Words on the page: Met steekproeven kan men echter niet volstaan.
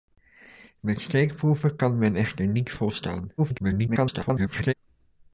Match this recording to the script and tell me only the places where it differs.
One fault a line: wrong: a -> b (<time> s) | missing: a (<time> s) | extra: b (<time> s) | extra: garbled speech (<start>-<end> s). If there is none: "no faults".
extra: garbled speech (3.4-4.7 s)